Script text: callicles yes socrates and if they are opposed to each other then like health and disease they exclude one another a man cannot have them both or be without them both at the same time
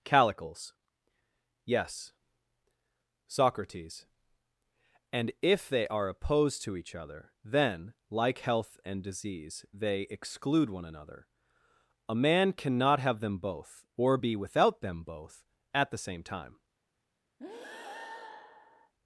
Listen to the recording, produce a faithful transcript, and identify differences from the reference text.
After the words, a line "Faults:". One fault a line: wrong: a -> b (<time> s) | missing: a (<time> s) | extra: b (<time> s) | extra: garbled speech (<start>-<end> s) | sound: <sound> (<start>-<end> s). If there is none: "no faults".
callicles yes socrates and if they are opposed to each other then like health and disease they exclude one another a man cannot have them both or be without them both at the same time
Faults:
sound: breath (17.4-18.9 s)